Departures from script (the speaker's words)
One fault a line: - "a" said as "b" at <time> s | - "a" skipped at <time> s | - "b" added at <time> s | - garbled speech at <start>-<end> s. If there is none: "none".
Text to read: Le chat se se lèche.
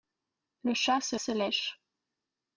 none